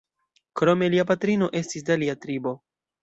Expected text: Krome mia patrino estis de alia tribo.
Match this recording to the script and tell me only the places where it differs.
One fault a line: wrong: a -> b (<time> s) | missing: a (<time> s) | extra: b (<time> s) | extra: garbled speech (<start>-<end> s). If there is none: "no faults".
wrong: mia -> lia (0.9 s)